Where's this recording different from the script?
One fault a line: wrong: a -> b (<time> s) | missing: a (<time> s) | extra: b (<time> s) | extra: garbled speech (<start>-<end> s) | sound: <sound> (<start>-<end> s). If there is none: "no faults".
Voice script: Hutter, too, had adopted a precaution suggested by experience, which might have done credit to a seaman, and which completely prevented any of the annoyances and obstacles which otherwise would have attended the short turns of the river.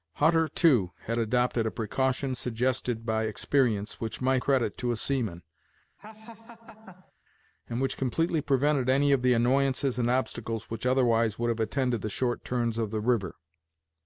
missing: have done (4.4 s)
sound: laugh (6.0-7.1 s)